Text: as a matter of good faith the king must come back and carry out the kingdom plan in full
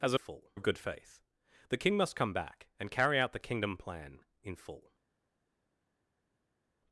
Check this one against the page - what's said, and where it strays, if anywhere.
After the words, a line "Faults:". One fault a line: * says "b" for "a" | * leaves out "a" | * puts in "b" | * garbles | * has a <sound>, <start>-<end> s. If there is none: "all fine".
as a full of good faith the king must come back and carry out the kingdom plan in full
Faults:
* says "full" for "matter"